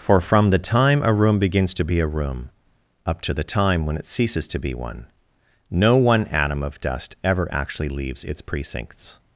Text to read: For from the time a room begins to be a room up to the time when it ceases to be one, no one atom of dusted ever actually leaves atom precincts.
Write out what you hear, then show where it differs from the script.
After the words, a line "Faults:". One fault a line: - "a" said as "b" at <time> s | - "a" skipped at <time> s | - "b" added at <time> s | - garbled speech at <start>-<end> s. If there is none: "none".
For from the time a room begins to be a room up to the time when it ceases to be one, no one atom of dust ever actually leaves its precincts.
Faults:
- "dusted" said as "dust" at 6.8 s
- "atom" said as "its" at 8.2 s